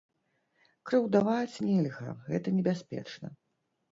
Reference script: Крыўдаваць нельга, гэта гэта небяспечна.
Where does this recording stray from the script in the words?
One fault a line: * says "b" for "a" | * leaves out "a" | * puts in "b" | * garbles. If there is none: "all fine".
* leaves out "гэта"